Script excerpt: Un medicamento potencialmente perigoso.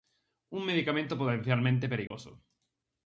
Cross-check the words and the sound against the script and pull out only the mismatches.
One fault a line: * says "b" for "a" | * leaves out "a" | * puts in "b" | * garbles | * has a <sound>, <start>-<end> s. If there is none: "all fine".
* has a dropout, 2.1-2.1 s